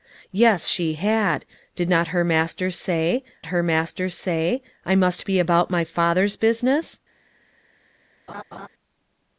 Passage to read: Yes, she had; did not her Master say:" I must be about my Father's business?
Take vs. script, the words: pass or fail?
fail